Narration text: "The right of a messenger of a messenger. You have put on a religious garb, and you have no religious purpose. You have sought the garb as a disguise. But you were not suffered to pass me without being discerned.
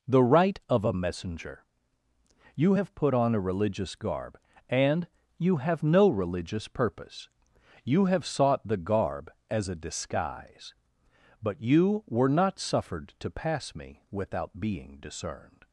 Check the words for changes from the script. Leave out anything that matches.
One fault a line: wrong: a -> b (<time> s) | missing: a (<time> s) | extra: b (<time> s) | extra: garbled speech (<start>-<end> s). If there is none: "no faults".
missing: of a messenger (1.6 s)